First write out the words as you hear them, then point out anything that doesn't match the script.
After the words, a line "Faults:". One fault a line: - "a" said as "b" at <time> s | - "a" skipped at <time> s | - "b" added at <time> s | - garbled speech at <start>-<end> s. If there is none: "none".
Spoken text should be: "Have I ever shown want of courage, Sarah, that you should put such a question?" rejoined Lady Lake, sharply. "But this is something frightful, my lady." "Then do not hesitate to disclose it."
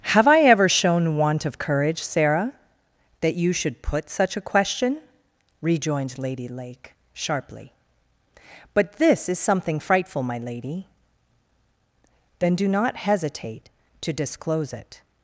"Have I ever shown want of courage, Sarah, that you should put such a question?" rejoined Lady Lake, sharply. "But this is something frightful, my lady." "Then do not hesitate to disclose it."
Faults:
none